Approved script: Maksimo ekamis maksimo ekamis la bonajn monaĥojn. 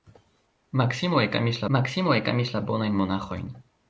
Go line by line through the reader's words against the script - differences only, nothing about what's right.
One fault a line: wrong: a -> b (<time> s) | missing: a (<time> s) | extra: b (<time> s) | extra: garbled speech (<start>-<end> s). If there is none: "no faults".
no faults